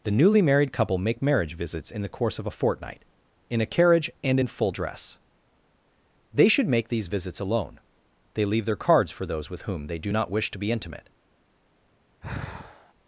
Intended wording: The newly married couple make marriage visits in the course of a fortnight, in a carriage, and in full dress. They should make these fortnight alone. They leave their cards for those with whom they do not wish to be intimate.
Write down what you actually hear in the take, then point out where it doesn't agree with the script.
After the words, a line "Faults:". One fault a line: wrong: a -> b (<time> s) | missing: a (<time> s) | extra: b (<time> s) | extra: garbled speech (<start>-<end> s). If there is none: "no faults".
The newly married couple make marriage visits in the course of a fortnight, in a carriage, and in full dress. They should make these visits alone. They leave their cards for those with whom they do not wish to be intimate.
Faults:
wrong: fortnight -> visits (7.1 s)